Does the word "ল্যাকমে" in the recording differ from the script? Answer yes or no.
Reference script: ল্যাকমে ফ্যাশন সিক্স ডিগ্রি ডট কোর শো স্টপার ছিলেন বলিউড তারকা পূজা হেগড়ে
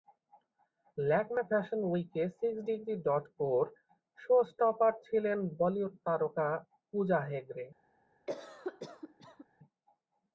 no